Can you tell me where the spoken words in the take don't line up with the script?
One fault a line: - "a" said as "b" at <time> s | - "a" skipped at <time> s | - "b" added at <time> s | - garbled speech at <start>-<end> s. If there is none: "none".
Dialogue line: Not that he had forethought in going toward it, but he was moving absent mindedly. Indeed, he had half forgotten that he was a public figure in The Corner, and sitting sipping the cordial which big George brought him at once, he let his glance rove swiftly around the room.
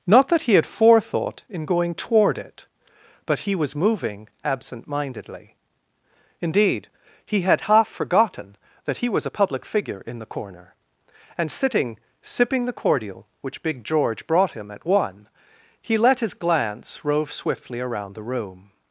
- "once" said as "one" at 14.8 s